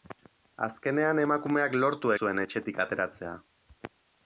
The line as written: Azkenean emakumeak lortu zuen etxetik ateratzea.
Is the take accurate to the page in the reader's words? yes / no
yes